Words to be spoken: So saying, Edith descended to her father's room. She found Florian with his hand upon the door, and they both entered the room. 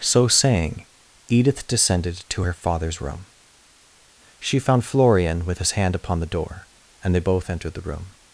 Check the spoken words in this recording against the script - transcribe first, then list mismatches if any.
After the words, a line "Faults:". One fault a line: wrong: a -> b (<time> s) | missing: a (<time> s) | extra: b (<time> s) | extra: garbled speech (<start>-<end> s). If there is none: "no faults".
So saying, Edith descended to her father's room. She found Florian with his hand upon the door, and they both entered the room.
Faults:
no faults